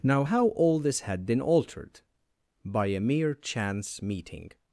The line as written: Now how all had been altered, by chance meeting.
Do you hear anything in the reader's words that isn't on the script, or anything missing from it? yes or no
yes